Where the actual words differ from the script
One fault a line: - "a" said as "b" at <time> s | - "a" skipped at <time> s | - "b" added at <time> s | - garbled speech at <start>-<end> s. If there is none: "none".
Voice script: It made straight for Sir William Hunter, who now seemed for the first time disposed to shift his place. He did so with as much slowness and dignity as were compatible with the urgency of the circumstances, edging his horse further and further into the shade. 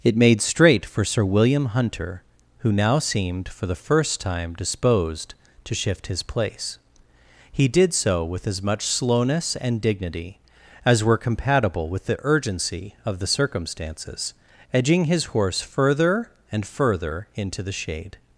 none